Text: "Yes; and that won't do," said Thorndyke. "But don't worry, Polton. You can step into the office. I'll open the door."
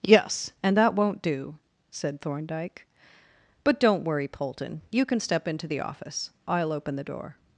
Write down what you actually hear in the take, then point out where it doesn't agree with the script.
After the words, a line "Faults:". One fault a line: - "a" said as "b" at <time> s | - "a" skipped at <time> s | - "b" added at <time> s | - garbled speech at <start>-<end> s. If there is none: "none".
"Yes; and that won't do," said Thorndyke. "But don't worry, Polton. You can step into the office. I'll open the door."
Faults:
none